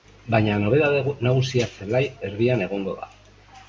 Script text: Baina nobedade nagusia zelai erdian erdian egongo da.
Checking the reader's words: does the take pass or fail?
fail